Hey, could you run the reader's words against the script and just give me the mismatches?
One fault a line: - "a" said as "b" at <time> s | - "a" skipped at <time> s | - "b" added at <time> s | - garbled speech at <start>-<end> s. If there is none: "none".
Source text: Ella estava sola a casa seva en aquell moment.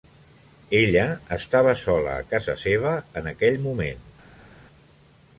none